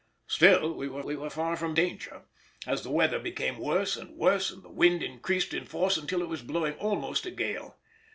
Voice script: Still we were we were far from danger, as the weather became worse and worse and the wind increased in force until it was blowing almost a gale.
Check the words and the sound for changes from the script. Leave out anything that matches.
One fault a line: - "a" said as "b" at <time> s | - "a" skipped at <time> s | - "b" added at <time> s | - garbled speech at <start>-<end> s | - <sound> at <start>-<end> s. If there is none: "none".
none